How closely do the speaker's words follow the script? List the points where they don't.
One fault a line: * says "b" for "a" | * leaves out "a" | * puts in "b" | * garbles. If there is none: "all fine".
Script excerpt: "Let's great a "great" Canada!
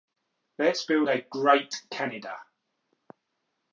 * says "build" for "great"